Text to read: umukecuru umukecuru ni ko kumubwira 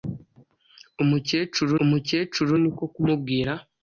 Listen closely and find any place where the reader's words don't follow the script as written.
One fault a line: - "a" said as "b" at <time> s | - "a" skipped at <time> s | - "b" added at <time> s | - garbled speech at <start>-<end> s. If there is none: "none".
none